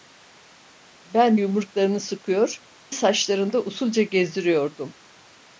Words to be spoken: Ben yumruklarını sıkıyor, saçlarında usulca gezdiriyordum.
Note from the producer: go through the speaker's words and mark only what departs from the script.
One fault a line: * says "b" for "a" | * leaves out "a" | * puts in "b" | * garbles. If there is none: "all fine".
all fine